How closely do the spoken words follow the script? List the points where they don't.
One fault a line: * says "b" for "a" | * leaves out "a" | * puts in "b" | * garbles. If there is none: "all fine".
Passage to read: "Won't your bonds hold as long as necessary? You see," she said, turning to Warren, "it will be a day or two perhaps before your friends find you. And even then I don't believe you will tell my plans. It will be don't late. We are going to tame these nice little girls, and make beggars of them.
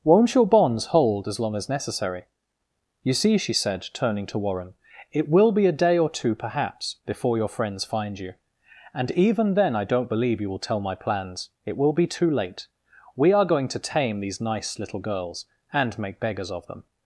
* says "too" for "don't"